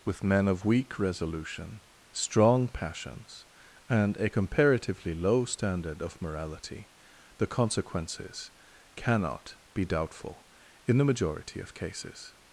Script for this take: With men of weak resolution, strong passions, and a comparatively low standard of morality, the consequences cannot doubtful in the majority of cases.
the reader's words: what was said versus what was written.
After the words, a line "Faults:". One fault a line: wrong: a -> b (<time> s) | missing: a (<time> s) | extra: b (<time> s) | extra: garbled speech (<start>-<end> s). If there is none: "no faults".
With men of weak resolution, strong passions, and a comparatively low standard of morality, the consequences cannot be doubtful in the majority of cases.
Faults:
extra: be (9.7 s)